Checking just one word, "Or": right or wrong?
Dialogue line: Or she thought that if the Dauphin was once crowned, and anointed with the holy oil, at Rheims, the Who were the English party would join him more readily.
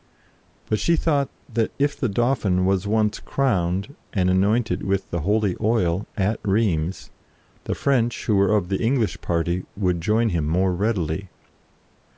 wrong